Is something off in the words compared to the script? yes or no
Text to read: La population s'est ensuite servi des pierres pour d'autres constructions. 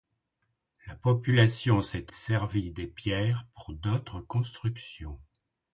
yes